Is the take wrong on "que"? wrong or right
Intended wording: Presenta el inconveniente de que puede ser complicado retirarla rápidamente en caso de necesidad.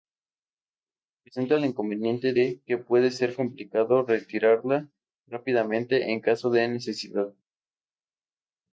right